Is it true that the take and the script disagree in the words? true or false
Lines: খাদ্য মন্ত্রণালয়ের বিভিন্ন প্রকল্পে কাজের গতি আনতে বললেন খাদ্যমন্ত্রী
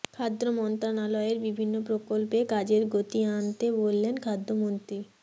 false